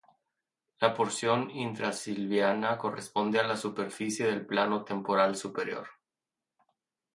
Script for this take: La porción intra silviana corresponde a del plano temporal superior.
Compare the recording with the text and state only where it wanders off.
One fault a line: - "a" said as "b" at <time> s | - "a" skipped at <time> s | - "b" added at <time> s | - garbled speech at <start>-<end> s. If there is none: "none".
- "la superficie" added at 3.4 s